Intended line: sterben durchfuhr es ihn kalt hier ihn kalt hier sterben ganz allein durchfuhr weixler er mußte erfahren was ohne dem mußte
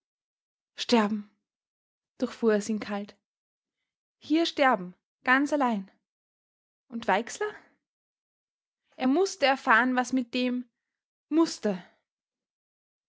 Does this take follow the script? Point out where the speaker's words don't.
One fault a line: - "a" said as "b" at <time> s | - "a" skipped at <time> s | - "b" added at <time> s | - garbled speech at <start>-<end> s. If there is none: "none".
- "ihn kalt hier" skipped at 4.5 s
- "durchfuhr" said as "und" at 6.9 s
- "ohne" said as "mit" at 10.1 s